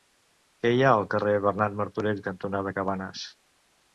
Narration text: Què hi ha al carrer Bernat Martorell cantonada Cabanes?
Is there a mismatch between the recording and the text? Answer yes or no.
no